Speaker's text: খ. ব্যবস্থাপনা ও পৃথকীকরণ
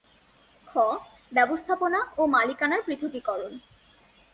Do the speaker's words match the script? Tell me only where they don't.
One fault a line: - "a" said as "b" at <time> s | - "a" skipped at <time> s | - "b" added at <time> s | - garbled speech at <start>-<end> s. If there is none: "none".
- "মালিকানার" added at 2.3 s